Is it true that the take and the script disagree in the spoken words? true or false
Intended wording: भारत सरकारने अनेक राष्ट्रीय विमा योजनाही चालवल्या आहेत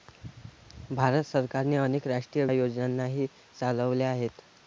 true